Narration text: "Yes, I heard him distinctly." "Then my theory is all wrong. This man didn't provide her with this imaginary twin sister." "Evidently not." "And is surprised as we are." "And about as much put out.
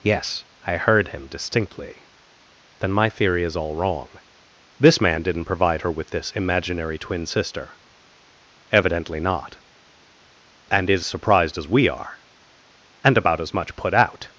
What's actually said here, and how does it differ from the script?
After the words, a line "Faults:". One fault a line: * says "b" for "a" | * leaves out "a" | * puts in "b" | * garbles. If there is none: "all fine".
"Yes, I heard him distinctly." "Then my theory is all wrong. This man didn't provide her with this imaginary twin sister." "Evidently not." "And is surprised as we are." "And about as much put out.
Faults:
all fine